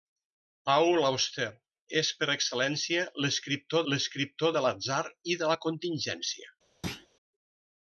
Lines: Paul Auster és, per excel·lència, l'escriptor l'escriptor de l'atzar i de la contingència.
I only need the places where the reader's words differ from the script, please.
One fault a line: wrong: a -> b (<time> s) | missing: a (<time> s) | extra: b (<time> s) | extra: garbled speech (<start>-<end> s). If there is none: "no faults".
no faults